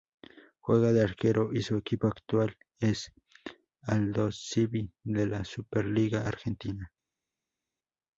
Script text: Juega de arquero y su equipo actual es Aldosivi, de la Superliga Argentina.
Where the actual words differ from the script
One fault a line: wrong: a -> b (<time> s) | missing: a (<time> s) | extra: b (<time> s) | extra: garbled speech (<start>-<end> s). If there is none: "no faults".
no faults